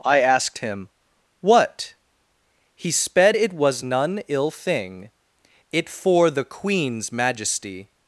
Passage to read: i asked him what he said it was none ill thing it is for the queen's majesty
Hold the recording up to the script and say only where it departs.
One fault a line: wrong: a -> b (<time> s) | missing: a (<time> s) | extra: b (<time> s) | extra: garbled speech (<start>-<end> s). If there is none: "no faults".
wrong: said -> sped (2.9 s)
missing: is (5.9 s)